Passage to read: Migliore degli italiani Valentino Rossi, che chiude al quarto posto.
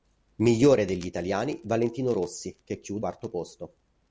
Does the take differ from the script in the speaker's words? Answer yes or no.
yes